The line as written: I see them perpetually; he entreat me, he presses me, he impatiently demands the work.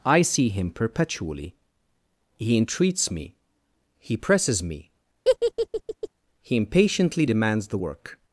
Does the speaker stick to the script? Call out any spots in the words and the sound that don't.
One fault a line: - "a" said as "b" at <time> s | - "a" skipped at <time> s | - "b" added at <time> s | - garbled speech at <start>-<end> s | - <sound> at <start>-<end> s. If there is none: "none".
- "them" said as "him" at 0.5 s
- "entreat" said as "entreats" at 2.6 s
- laugh at 5.2-6.1 s